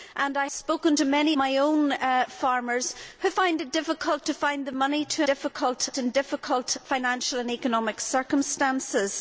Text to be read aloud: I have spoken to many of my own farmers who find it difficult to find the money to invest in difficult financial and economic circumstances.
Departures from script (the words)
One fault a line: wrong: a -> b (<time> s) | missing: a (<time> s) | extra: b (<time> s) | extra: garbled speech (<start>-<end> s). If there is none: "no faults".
missing: have (0.5 s)
missing: of (1.4 s)
wrong: invest -> difficult (5.2 s)